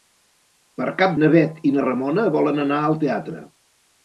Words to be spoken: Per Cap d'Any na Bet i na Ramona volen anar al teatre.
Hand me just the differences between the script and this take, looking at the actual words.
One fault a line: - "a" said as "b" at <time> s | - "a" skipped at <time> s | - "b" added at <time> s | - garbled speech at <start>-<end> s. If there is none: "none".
- "d'Any" skipped at 1.1 s